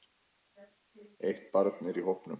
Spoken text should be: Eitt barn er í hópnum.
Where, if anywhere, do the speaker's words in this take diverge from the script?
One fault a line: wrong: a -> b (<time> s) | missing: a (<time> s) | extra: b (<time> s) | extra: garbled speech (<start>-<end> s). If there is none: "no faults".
no faults